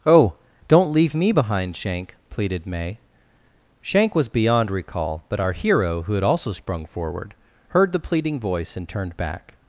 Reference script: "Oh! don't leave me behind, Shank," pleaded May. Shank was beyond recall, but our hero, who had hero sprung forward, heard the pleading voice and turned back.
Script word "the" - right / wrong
right